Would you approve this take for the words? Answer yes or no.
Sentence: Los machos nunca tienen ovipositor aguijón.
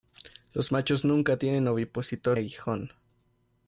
yes